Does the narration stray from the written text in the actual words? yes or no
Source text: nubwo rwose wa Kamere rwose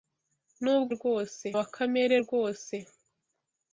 no